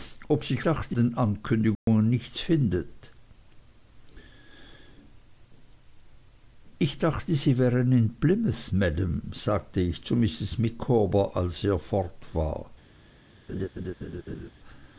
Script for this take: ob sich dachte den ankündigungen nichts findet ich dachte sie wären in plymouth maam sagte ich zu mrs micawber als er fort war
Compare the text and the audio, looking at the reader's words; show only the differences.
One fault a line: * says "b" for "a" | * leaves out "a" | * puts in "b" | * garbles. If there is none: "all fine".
all fine